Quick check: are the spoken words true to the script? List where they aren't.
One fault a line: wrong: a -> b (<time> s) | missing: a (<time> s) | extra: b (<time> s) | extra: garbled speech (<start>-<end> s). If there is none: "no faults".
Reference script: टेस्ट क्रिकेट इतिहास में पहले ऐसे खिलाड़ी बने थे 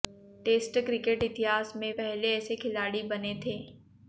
no faults